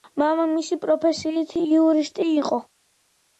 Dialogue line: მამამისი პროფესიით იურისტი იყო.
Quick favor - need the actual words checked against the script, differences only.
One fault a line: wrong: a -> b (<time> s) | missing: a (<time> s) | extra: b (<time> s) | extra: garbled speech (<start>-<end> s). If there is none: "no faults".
no faults